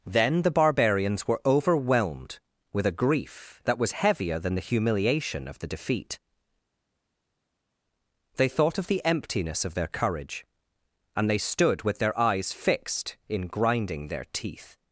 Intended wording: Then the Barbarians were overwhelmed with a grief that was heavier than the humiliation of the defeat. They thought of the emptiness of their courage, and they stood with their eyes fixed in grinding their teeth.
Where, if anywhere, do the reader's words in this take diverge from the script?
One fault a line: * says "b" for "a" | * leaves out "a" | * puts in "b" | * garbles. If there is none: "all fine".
all fine